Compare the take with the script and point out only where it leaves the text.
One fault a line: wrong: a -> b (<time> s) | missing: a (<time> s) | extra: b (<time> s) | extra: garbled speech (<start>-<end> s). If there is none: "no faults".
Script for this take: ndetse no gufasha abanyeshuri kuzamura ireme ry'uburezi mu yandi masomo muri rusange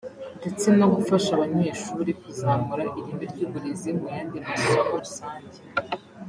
missing: muri (4.9 s)